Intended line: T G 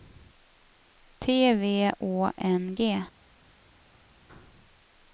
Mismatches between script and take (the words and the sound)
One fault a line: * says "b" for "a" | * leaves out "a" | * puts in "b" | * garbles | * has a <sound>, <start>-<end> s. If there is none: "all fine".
* puts in "V Å N"